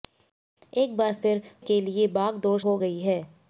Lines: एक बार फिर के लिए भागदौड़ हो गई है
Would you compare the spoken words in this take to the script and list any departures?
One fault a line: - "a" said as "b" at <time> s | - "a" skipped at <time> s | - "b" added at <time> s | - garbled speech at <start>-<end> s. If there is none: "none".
none